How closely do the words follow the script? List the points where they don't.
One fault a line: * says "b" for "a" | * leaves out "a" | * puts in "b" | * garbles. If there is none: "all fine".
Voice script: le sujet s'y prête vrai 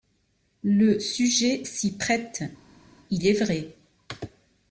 * puts in "il est"